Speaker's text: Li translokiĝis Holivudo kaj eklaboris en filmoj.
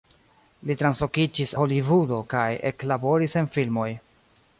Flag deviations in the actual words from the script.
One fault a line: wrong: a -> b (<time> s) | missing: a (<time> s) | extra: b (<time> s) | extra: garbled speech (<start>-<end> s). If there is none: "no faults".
no faults